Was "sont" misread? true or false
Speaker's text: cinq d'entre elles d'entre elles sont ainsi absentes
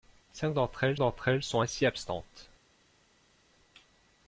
false